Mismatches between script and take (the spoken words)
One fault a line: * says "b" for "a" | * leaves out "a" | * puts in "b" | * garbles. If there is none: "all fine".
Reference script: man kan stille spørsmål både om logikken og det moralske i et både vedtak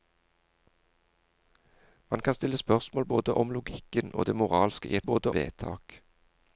all fine